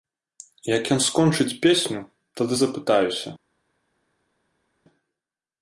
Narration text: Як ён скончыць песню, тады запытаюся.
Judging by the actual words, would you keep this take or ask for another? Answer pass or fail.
pass